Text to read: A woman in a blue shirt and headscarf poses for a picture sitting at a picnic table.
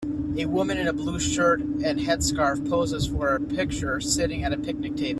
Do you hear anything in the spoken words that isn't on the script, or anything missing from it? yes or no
no